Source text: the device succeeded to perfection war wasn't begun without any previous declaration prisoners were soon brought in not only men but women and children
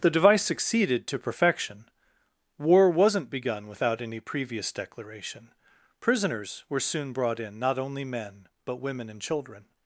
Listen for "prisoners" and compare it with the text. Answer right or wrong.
right